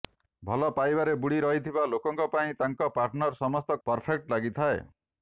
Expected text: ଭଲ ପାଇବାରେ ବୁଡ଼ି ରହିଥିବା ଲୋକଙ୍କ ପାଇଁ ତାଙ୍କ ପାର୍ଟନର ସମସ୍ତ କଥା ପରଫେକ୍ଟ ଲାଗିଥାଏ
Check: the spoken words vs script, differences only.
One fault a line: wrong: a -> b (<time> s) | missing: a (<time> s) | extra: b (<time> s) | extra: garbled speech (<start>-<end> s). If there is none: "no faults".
missing: କଥା (3.8 s)